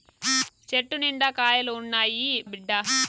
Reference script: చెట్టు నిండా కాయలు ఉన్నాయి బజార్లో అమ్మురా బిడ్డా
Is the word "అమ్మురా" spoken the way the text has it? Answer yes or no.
no